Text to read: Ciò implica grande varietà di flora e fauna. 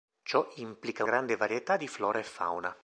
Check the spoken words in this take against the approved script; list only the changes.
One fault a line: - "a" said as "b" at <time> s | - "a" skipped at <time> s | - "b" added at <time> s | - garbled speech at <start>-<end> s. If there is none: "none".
none